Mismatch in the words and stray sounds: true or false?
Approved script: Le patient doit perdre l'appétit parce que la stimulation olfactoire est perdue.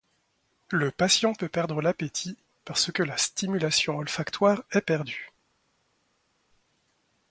true